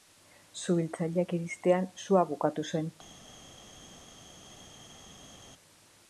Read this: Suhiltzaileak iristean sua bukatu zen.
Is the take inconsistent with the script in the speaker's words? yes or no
no